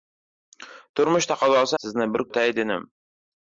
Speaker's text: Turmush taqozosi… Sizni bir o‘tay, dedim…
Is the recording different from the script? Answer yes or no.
no